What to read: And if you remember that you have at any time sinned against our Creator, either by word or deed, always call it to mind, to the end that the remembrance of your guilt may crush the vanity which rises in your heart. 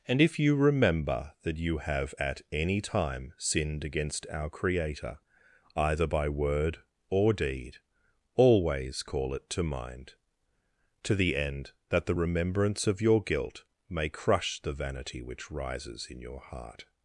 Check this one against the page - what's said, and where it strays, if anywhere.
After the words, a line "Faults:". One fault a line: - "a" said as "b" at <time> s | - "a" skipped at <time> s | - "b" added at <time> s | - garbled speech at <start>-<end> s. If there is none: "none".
And if you remember that you have at any time sinned against our Creator, either by word or deed, always call it to mind, to the end that the remembrance of your guilt may crush the vanity which rises in your heart.
Faults:
none